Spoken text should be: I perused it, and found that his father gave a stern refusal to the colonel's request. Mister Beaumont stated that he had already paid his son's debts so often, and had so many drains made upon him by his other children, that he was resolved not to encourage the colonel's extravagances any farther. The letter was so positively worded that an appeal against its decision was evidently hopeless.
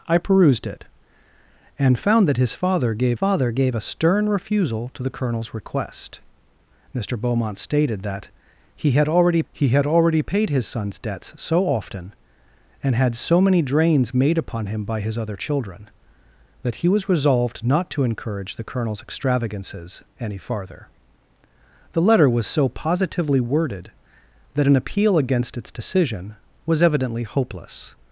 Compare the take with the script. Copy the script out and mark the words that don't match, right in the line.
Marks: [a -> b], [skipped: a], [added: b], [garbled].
I perused it, and found that his father gave [added: father gave] a stern refusal to the colonel's request. Mister Beaumont stated that he had already [added: he had already] paid his son's debts so often, and had so many drains made upon him by his other children, that he was resolved not to encourage the colonel's extravagances any farther. The letter was so positively worded that an appeal against its decision was evidently hopeless.